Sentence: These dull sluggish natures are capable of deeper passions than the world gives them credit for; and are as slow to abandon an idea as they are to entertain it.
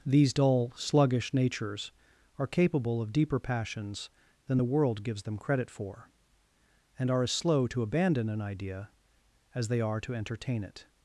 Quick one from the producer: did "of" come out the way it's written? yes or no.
yes